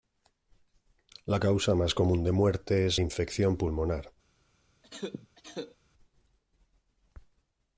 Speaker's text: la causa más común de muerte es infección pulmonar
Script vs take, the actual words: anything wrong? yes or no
no